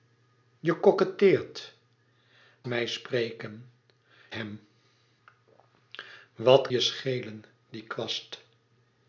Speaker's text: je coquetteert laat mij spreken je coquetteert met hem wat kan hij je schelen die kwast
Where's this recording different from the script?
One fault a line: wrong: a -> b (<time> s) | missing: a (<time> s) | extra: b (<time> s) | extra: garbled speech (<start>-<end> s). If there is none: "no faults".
missing: laat (1.7 s)
missing: je coquetteert met (3.7 s)
missing: kan hij (6.7 s)